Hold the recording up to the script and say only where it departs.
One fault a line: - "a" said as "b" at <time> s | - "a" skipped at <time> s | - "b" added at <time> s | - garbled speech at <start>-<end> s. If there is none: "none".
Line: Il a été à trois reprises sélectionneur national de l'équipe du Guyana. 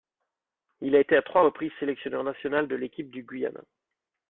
none